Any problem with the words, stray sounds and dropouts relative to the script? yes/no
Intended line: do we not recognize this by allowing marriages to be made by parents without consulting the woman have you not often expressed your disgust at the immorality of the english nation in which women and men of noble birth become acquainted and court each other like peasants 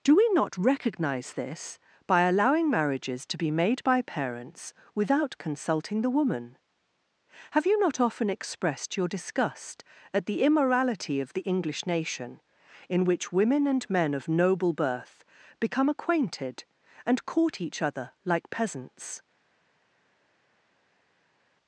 no